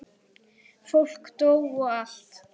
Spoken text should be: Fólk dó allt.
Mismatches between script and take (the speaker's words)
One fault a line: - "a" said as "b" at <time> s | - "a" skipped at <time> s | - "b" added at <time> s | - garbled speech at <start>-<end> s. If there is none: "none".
- "og" added at 1.6 s